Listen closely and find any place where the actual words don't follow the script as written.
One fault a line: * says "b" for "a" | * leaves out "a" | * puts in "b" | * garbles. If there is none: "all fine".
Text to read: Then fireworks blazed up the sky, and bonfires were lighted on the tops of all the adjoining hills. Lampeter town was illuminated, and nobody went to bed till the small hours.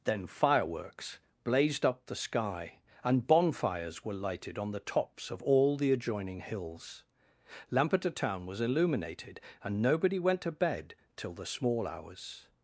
all fine